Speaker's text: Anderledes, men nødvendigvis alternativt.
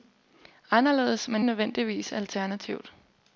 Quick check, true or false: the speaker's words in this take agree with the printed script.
true